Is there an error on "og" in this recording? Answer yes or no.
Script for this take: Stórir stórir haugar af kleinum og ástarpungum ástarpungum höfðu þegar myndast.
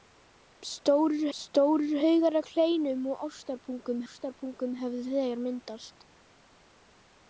no